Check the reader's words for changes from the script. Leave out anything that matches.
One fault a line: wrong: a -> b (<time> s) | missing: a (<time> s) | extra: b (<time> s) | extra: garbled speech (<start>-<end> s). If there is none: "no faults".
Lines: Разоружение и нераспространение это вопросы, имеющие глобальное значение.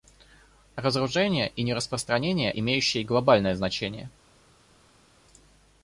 missing: это вопросы (2.5 s)